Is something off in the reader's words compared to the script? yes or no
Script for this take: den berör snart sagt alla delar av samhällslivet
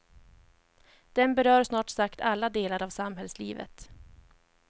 no